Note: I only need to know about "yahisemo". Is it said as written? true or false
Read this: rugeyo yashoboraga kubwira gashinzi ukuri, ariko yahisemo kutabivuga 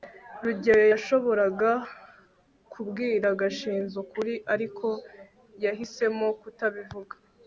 true